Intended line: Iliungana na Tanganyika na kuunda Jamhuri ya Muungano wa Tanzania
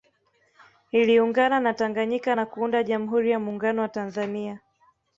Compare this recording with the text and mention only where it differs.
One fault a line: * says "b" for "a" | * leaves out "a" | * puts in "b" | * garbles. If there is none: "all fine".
all fine